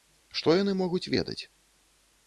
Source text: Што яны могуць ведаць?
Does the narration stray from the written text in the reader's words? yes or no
no